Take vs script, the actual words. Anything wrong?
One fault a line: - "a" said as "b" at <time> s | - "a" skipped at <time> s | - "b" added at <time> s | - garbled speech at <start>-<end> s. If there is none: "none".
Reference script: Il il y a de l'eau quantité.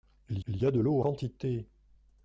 none